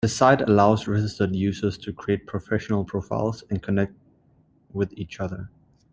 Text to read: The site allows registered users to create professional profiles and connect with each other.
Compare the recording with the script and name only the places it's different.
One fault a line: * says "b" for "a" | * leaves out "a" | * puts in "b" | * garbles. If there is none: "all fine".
all fine